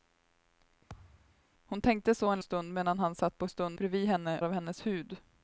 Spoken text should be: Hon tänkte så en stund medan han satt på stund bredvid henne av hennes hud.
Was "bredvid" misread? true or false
false